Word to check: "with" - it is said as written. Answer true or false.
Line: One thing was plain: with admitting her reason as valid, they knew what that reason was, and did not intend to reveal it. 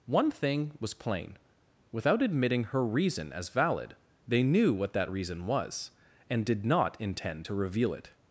false